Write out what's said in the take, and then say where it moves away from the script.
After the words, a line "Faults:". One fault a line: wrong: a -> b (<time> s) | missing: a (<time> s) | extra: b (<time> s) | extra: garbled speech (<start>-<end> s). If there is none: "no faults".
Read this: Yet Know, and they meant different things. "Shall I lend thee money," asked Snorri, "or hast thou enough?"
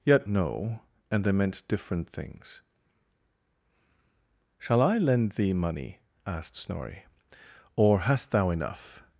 Yet Know, and they meant different things. "Shall I lend thee money," asked Snorri, "or hast thou enough?"
Faults:
no faults